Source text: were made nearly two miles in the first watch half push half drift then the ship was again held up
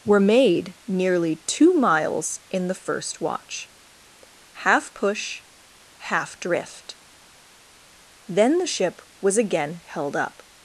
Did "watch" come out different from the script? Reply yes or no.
no